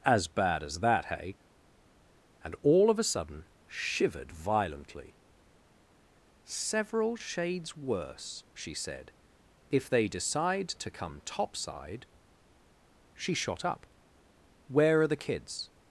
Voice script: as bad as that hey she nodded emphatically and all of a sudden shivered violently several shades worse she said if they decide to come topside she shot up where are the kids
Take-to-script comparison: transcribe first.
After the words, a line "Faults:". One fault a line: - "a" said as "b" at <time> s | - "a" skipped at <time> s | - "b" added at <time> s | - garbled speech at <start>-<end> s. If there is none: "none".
as bad as that hey and all of a sudden shivered violently several shades worse she said if they decide to come topside she shot up where are the kids
Faults:
- "she nodded emphatically" skipped at 1.4 s